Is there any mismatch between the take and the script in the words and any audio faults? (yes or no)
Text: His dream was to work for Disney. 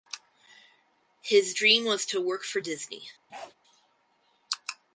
yes